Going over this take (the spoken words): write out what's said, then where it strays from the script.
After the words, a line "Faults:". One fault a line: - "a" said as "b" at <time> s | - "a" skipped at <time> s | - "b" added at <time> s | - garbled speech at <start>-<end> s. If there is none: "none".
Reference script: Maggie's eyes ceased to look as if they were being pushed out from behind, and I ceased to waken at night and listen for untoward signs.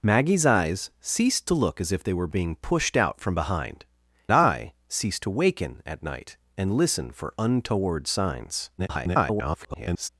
Maggie's eyes ceased to look as if they were being pushed out from behind, I ceased to waken at night and listen for untoward signs. [garbled]
Faults:
- "and" skipped at 3.8 s
- garbled speech at 8.8-10.1 s